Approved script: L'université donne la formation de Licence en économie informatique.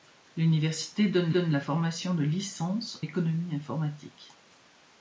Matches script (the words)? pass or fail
fail